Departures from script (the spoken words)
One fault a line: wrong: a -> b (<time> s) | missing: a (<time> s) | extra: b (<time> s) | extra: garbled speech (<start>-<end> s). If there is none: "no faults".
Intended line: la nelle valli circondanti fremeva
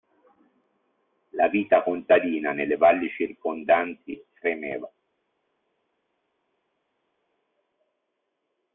extra: vita contadina (1.5 s)